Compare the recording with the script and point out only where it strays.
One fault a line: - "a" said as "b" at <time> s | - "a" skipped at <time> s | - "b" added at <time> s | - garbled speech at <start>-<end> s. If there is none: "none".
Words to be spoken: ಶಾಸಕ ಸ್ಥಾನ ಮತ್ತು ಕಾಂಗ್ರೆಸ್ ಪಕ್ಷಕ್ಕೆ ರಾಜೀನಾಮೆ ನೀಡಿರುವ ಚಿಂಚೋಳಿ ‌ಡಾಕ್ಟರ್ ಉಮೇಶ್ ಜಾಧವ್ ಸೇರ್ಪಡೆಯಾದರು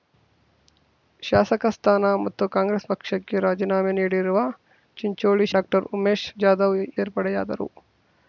none